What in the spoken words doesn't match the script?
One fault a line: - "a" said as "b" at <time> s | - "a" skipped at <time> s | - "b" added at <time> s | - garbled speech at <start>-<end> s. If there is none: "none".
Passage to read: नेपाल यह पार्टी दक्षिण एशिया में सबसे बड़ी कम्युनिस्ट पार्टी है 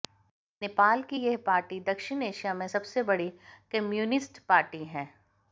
- "की" added at 1.0 s